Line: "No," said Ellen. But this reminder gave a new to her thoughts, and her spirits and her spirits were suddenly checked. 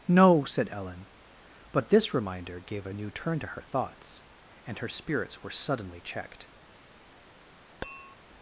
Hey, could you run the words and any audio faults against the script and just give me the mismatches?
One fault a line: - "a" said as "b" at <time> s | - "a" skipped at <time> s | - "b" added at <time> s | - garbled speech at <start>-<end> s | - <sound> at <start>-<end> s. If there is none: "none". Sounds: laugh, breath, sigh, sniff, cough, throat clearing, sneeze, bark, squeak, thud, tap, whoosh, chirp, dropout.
- "turn" added at 3.1 s
- "and her spirits" skipped at 5.4 s
- tap at 7.8-8.2 s